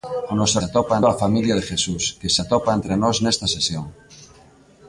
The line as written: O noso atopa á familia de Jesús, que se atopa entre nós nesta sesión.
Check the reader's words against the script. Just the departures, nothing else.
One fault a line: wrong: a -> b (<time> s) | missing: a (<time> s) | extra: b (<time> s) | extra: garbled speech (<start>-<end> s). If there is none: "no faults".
no faults